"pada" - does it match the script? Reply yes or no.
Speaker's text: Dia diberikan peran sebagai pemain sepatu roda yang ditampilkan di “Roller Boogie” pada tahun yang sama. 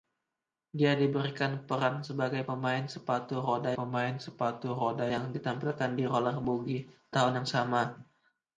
no